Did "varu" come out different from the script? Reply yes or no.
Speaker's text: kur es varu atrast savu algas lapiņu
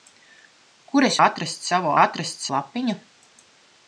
yes